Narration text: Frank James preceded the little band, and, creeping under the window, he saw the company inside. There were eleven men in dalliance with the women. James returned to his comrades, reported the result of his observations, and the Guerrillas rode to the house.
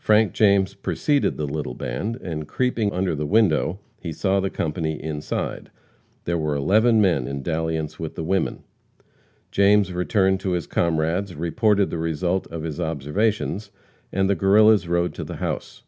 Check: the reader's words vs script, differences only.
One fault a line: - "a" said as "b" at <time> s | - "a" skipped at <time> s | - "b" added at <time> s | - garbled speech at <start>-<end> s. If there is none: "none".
none